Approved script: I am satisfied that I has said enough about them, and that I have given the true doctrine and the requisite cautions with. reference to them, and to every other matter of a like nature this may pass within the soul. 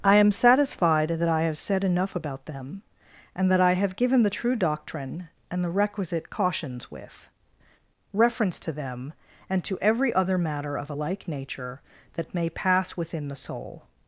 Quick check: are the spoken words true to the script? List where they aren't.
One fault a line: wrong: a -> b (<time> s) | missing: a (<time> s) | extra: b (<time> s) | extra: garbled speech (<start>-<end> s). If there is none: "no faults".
wrong: has -> have (1.4 s)
wrong: this -> that (12.1 s)